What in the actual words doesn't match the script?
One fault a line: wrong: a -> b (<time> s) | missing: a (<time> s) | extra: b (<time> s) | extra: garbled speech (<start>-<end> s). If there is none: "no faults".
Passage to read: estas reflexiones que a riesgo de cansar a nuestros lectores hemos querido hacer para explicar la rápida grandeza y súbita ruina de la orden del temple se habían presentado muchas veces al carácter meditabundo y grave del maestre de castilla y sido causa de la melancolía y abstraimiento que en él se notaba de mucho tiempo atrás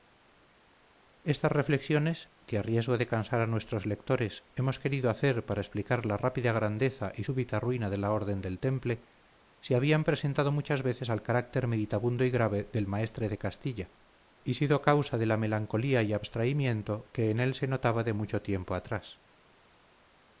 no faults